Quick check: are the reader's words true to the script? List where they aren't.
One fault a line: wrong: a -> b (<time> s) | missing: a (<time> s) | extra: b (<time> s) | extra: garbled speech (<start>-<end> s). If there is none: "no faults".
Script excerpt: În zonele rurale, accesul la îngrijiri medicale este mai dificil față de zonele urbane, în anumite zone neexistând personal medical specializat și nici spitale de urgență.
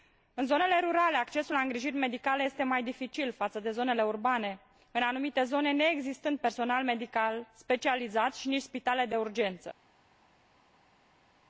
no faults